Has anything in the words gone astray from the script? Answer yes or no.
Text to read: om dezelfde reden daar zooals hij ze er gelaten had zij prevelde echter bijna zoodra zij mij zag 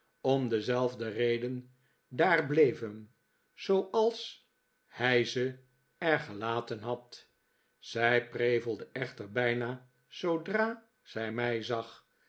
yes